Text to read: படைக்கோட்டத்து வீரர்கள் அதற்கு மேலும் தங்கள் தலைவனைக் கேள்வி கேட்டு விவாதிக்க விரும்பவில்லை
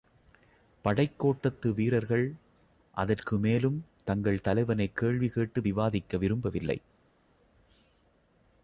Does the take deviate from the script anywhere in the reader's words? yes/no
no